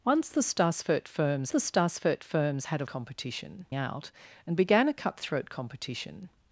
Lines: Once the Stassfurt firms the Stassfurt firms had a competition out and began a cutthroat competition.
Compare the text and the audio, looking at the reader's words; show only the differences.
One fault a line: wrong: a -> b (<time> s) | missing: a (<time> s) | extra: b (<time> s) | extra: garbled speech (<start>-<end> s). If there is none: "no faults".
no faults